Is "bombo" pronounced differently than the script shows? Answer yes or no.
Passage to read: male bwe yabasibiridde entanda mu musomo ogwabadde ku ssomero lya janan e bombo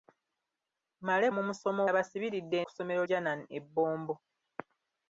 no